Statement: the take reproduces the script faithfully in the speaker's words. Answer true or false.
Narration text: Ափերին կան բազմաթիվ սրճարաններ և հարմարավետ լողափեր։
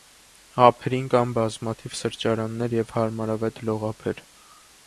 true